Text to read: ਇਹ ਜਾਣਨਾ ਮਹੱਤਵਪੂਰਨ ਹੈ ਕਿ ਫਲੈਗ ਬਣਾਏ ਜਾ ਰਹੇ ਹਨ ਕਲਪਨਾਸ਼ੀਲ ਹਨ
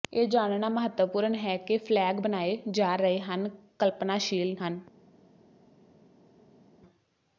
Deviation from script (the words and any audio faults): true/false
false